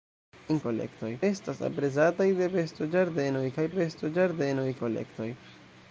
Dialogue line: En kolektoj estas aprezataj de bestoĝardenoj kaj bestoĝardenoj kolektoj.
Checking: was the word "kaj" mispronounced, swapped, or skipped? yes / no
no